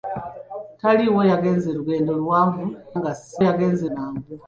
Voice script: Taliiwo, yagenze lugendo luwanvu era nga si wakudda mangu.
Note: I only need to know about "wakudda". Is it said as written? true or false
false